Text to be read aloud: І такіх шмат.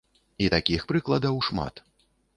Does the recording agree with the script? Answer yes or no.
no